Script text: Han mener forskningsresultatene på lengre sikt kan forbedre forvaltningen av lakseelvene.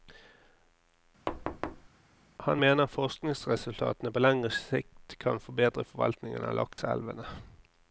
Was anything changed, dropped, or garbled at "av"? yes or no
no